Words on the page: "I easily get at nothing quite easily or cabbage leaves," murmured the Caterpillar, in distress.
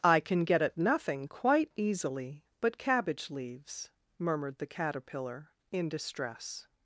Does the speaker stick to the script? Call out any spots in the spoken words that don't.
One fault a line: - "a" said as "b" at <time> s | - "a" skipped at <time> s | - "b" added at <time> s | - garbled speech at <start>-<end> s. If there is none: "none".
- "easily" said as "can" at 0.2 s
- "or" said as "but" at 2.6 s